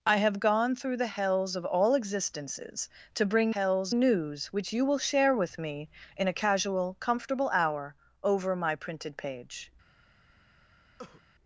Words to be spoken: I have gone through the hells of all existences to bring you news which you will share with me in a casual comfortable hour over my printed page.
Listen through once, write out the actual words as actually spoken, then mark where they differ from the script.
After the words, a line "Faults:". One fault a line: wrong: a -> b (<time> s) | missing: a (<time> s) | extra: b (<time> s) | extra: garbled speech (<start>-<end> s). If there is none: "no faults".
I have gone through the hells of all existences to bring hells news which you will share with me in a casual comfortable hour over my printed page.
Faults:
wrong: you -> hells (3.5 s)